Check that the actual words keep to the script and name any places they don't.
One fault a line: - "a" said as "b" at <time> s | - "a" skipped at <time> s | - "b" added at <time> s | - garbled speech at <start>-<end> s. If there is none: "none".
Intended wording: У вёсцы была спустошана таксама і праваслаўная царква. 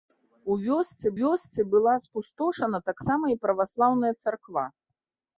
- "вёсцы" added at 1.2 s